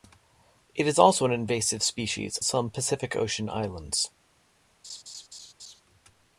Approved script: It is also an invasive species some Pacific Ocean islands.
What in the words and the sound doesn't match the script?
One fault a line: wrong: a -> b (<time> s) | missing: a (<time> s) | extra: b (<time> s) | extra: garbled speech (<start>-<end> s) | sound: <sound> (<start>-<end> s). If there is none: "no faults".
sound: laugh (4.8-5.8 s)